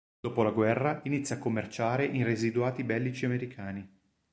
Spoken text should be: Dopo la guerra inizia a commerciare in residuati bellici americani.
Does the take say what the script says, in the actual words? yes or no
yes